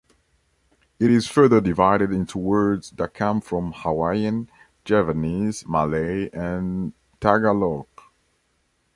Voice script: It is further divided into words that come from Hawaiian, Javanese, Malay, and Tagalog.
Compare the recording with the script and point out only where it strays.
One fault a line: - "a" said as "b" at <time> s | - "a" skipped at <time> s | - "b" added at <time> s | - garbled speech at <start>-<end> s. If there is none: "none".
none